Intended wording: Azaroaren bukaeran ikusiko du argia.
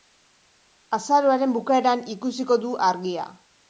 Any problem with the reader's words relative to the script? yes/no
no